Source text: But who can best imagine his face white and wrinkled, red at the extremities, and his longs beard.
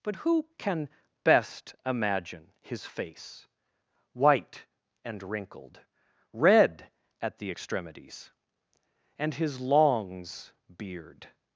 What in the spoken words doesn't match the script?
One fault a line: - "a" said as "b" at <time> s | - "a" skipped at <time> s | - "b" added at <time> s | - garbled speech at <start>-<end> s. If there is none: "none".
none